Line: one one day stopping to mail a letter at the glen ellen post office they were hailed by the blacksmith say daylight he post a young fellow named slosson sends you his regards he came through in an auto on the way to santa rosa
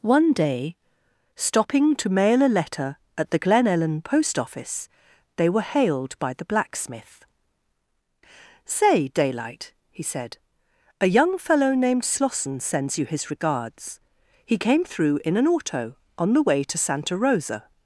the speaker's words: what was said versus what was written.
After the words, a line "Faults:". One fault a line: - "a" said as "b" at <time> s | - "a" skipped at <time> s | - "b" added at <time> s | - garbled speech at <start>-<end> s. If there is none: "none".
one day stopping to mail a letter at the glen ellen post office they were hailed by the blacksmith say daylight he said a young fellow named slosson sends you his regards he came through in an auto on the way to santa rosa
Faults:
- "one" skipped at 0.3 s
- "post" said as "said" at 10.0 s